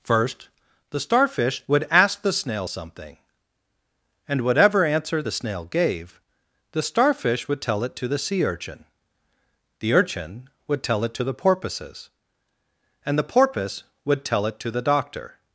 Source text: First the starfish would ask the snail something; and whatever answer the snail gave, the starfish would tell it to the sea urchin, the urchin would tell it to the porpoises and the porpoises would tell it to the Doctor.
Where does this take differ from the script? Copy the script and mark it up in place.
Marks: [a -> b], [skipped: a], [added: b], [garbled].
First the starfish would ask the snail something; and whatever answer the snail gave, the starfish would tell it to the sea urchin, the urchin would tell it to the porpoises and the [porpoises -> porpoise] would tell it to the Doctor.